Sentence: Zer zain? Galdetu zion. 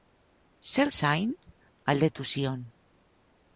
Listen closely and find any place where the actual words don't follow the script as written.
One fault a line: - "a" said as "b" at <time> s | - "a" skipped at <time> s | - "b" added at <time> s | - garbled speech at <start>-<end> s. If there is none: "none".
none